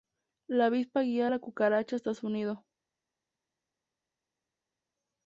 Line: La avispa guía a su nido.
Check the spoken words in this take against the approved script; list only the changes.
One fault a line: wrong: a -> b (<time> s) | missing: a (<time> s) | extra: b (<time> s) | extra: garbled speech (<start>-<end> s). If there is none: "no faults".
extra: la cucaracha hasta (1.3 s)